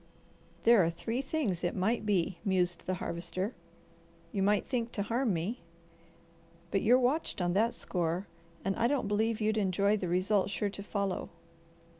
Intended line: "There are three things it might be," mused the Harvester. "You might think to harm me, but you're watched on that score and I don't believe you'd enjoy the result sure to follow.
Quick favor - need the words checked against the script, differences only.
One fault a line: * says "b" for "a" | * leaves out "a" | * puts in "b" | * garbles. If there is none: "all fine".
all fine